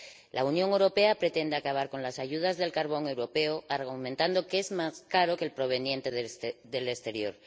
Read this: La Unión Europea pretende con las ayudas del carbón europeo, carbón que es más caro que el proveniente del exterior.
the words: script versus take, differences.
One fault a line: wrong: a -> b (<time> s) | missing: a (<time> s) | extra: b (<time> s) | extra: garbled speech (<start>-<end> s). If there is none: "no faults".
extra: acabar (1.6 s)
wrong: carbón -> argumentando (3.7 s)